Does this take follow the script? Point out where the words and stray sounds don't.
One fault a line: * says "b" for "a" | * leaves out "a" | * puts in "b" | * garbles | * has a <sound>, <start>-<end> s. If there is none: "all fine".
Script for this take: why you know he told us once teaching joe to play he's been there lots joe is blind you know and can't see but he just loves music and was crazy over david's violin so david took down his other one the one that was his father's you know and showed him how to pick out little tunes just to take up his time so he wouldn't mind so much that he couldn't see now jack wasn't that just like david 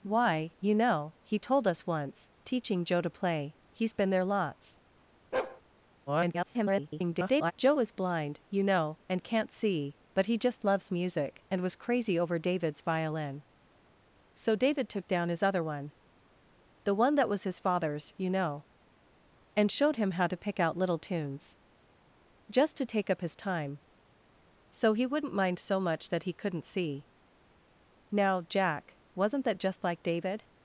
* has a bark, 5.3-5.6 s
* garbles